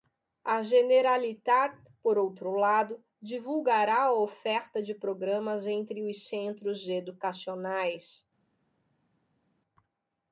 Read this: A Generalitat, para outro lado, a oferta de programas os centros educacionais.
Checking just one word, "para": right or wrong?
wrong